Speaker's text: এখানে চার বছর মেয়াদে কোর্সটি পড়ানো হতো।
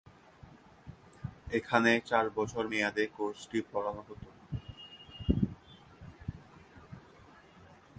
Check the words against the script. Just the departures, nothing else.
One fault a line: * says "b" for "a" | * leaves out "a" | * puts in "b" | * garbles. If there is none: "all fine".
all fine